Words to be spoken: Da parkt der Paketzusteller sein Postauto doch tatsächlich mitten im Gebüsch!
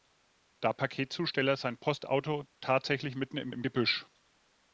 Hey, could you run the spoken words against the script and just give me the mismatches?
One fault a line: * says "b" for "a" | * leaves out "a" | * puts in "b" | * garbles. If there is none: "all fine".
* leaves out "parkt der"
* leaves out "doch"
* puts in "im"